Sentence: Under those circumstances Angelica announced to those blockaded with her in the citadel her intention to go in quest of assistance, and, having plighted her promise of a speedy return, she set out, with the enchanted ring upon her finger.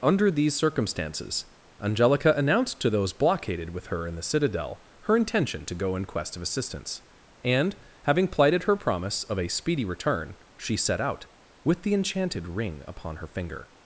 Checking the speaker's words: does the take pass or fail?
fail